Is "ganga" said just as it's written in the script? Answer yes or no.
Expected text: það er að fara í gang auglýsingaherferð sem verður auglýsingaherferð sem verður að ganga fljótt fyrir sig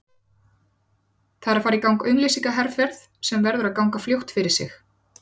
yes